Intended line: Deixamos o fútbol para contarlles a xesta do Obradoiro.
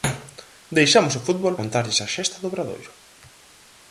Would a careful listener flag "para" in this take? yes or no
yes